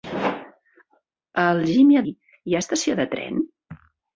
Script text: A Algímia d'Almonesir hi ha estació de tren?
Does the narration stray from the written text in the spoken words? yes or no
yes